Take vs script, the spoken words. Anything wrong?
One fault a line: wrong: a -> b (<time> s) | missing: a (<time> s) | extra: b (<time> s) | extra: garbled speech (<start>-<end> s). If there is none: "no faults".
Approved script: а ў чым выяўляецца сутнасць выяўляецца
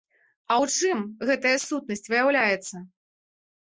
wrong: выяўляецца -> гэтая (1.3 s)